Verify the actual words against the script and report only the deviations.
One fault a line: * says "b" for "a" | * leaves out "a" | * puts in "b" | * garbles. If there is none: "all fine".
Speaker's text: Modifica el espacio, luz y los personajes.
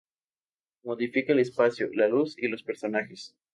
* puts in "la"